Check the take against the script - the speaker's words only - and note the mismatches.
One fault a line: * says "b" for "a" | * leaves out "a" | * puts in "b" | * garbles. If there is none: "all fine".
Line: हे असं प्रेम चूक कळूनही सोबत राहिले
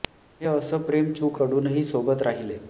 all fine